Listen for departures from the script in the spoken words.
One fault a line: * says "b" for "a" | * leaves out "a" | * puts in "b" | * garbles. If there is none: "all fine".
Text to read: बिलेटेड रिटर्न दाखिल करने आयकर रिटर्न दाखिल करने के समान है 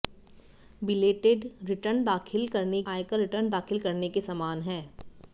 all fine